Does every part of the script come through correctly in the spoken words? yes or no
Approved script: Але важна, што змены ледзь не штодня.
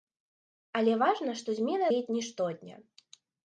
yes